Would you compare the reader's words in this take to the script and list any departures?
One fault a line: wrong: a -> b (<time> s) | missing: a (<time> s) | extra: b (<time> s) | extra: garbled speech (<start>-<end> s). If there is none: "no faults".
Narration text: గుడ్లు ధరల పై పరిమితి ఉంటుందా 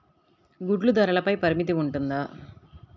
no faults